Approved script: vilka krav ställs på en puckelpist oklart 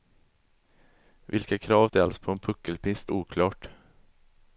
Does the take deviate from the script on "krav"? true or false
false